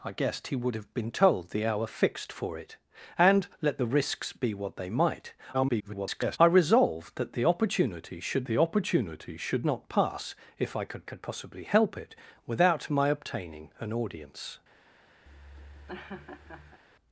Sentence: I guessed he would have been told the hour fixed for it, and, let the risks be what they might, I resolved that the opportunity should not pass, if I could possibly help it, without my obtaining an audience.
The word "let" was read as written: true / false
true